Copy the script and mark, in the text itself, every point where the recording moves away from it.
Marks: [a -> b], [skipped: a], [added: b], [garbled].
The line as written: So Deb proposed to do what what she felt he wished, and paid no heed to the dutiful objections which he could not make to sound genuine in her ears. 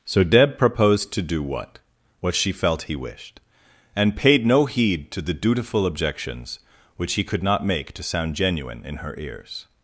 So Deb proposed to do what what she felt he wished, and paid no heed to the dutiful objections which he could not make to sound genuine in her ears.